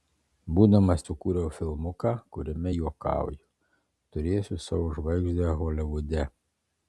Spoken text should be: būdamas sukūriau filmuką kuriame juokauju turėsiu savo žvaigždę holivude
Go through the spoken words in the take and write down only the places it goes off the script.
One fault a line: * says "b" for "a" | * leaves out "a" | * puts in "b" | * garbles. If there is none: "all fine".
all fine